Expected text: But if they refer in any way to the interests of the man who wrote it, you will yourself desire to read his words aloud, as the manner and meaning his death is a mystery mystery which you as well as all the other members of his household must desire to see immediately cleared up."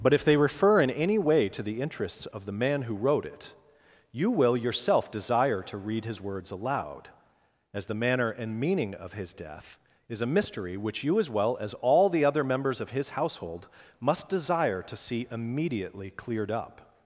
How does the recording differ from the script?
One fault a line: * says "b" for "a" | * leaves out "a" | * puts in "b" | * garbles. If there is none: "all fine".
* puts in "of"
* leaves out "mystery"